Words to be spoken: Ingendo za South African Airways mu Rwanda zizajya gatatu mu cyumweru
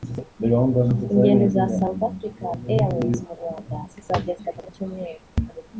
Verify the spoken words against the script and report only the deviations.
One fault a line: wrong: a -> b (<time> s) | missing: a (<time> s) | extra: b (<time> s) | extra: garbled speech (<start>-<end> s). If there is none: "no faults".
no faults